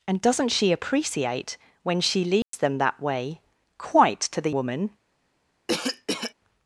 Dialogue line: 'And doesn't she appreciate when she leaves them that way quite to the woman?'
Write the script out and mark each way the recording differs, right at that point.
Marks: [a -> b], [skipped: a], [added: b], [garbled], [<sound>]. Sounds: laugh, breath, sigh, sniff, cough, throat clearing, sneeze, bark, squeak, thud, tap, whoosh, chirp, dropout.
'And doesn't she appreciate when she leaves [dropout] them that way quite to the woman?' [cough]